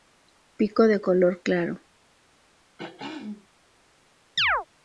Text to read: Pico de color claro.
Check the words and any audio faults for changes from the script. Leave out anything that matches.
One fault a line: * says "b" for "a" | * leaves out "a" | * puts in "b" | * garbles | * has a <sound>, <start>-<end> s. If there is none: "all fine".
* has a throat clearing, 2.8-3.5 s
* has a chirp, 4.4-4.7 s